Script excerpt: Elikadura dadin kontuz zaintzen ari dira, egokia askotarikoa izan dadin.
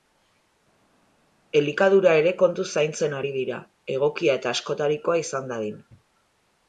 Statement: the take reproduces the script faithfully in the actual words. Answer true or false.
false